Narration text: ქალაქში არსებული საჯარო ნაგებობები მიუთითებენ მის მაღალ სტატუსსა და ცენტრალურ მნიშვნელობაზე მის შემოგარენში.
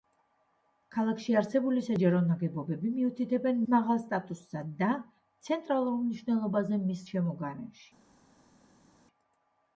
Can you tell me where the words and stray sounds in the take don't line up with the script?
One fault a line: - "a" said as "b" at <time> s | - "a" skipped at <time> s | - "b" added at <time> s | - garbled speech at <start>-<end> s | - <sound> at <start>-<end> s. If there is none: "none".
- "მის" skipped at 3.6 s